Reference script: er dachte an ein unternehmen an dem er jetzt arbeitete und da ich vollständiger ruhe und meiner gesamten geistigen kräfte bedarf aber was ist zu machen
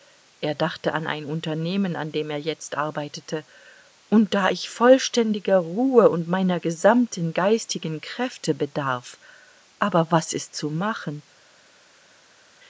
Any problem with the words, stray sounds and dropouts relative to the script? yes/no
no